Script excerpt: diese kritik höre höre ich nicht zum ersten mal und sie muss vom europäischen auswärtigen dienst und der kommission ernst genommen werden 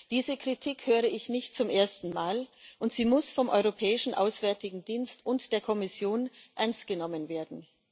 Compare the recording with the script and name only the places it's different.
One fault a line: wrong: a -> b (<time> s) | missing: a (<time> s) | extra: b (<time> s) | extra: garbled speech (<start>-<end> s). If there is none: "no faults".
missing: höre (1.0 s)